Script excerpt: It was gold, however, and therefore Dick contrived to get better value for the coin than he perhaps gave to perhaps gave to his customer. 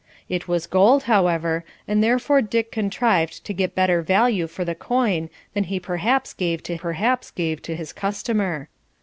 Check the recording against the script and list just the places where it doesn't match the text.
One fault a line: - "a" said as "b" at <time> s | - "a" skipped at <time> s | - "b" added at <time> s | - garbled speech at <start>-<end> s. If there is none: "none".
none